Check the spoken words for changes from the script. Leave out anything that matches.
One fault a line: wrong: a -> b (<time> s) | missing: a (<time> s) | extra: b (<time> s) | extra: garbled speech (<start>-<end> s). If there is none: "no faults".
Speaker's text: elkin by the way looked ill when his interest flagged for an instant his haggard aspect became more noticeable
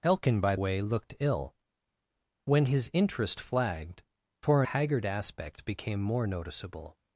missing: the (0.6 s)
missing: an instant his (4.6 s)